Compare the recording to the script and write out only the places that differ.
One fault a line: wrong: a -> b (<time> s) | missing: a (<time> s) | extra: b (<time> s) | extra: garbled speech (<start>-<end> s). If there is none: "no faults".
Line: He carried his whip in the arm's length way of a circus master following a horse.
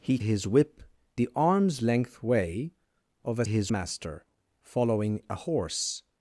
missing: carried (0.2 s)
missing: in (0.8 s)
wrong: circus -> his (3.5 s)